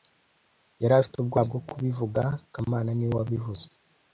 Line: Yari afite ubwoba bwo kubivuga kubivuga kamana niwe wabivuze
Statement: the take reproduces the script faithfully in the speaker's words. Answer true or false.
false